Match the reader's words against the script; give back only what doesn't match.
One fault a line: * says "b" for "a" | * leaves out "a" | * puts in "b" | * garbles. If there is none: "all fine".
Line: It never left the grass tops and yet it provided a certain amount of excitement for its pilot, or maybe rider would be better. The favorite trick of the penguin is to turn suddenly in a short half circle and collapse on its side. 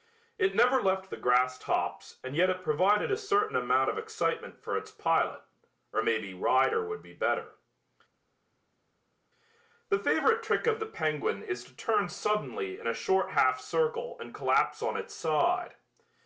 all fine